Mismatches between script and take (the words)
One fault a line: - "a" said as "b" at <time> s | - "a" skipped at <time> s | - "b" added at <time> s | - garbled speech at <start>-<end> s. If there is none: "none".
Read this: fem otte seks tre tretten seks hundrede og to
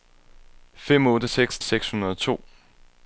- "tre tretten" skipped at 1.6 s